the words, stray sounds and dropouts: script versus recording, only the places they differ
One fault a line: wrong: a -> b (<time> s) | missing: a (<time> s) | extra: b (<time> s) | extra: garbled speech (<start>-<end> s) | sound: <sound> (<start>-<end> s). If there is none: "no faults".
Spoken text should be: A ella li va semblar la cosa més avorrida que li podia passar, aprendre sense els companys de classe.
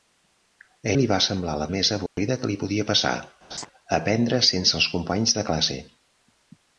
missing: ella (0.9 s)
missing: cosa (1.7 s)
sound: dropout (2.1-2.2 s)
sound: laugh (3.5-3.7 s)